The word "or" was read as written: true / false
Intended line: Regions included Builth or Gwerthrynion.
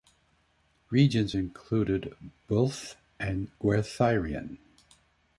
false